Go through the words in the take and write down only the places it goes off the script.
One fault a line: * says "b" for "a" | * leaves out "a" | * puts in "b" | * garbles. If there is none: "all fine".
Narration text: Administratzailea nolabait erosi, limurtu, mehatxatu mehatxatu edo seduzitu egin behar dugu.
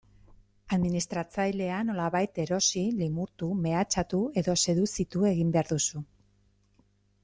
* leaves out "mehatxatu"
* says "duzu" for "dugu"